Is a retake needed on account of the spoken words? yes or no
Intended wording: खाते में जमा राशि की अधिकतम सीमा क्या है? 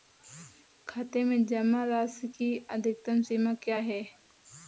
no